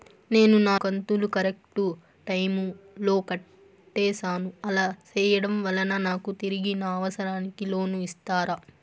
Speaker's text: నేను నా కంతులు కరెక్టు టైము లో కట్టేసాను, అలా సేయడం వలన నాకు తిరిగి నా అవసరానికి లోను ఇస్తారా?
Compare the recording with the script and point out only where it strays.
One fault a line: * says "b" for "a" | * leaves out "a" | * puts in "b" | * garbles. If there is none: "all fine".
all fine